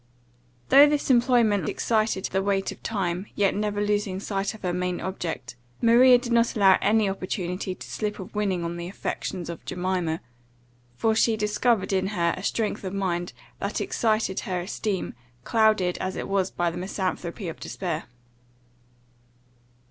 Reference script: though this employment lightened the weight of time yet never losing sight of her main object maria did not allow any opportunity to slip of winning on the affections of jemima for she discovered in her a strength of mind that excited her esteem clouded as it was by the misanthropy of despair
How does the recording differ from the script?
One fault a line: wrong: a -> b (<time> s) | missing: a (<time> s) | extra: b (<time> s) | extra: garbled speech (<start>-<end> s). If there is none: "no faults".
wrong: lightened -> excited (1.7 s)